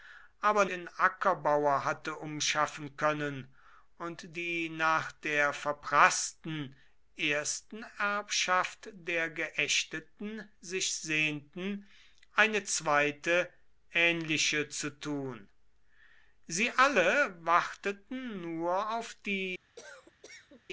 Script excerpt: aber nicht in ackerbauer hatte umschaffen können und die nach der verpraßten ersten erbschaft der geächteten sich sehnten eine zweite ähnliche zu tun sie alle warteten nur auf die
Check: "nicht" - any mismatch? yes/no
yes